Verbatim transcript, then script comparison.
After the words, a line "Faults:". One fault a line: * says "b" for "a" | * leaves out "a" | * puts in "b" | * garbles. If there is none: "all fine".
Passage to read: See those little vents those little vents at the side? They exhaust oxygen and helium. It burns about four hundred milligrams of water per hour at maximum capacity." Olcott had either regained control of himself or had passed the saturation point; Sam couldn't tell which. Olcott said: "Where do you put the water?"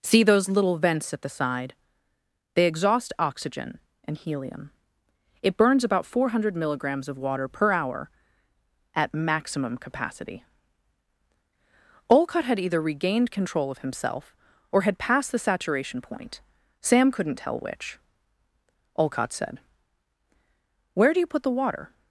See those little vents at the side? They exhaust oxygen and helium. It burns about four hundred milligrams of water per hour at maximum capacity." Olcott had either regained control of himself or had passed the saturation point; Sam couldn't tell which. Olcott said: "Where do you put the water?"
Faults:
* leaves out "those little vents"